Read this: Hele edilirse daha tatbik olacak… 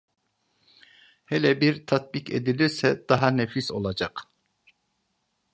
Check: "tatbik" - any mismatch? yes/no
yes